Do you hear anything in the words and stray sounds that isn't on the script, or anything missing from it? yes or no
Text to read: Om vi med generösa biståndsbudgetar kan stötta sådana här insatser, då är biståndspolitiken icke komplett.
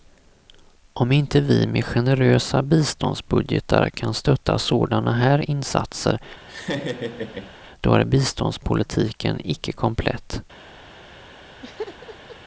yes